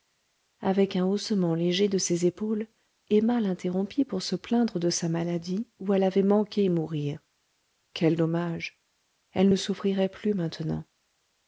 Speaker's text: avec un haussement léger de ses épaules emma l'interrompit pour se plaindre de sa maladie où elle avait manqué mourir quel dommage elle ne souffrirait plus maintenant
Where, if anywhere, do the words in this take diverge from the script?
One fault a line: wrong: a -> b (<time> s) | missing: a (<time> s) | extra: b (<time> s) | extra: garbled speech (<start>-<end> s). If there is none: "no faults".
no faults